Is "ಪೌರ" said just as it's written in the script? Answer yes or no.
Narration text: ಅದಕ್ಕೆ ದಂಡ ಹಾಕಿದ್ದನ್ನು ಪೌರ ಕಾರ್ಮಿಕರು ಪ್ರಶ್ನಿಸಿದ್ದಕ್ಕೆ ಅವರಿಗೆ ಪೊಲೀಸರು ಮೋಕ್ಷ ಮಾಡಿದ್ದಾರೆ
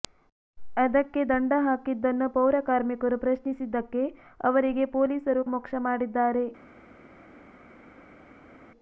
yes